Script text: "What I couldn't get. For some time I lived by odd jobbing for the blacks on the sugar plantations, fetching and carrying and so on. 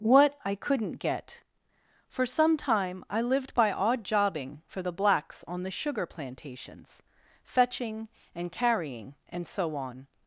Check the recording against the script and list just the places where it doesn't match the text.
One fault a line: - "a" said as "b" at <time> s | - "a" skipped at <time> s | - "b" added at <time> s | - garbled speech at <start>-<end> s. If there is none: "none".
none